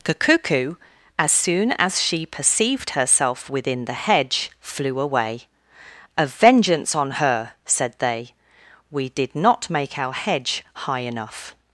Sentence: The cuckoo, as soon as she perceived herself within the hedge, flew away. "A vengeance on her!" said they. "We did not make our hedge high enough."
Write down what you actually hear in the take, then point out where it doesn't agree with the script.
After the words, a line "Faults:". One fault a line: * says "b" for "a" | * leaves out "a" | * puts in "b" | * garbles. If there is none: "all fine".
The cuckoo, as soon as she perceived herself within the hedge, flew away. "A vengeance on her!" said they. "We did not make our hedge high enough."
Faults:
all fine